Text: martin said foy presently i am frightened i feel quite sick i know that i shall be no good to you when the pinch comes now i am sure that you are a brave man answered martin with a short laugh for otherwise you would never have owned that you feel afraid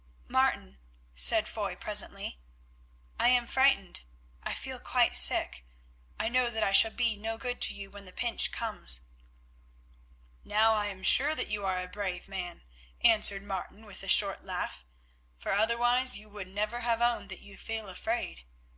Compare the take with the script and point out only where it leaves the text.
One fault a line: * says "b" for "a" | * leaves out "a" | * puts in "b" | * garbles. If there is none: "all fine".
all fine